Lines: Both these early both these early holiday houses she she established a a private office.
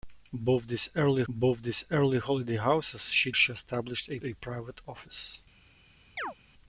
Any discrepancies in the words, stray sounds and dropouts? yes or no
yes